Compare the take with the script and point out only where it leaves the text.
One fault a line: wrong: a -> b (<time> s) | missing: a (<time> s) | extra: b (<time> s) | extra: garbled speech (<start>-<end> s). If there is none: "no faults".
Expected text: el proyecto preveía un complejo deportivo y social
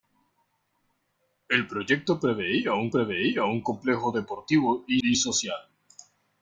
extra: preveía un (2.9 s)
extra: y (5.0 s)